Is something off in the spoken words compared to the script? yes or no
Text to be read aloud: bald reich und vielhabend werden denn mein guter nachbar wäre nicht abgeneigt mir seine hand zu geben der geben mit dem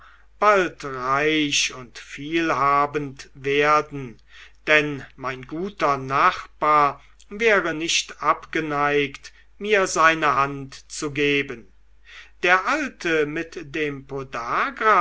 yes